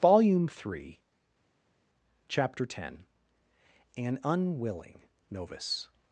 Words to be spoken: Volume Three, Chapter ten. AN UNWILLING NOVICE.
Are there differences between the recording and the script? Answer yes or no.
no